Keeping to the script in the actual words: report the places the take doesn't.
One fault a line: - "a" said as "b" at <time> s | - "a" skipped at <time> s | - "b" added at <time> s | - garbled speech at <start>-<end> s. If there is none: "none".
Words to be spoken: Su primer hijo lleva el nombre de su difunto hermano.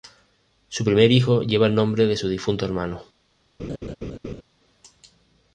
none